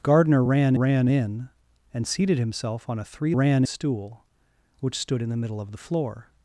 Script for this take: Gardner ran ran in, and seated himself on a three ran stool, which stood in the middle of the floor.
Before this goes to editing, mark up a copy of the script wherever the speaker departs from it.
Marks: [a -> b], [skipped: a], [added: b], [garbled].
Gardner ran ran in, and seated himself on a three ran stool, which stood in the middle of the floor.